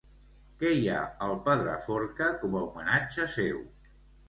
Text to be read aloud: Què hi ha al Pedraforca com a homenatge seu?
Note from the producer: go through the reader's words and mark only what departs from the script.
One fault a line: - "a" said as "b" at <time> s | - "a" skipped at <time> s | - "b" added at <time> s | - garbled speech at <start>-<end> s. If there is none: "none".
none